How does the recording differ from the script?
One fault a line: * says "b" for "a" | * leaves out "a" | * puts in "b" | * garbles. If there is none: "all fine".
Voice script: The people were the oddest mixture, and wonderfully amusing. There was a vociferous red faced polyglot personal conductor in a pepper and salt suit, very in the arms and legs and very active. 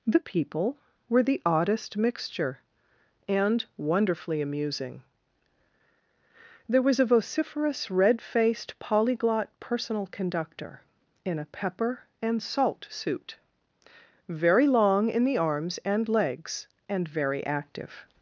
* puts in "long"